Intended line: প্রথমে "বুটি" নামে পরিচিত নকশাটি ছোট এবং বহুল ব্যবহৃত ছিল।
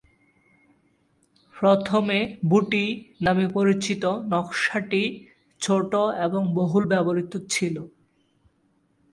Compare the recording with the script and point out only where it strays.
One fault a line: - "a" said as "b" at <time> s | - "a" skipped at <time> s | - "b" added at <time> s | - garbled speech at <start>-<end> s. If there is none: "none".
none